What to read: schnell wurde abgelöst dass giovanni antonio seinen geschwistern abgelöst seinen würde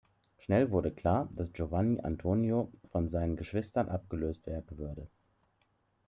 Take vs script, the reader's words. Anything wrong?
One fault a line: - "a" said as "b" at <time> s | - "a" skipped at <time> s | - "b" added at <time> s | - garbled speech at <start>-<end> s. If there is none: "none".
- "abgelöst" said as "klar" at 0.9 s
- "von" added at 2.9 s
- "seinen" said as "werden" at 4.5 s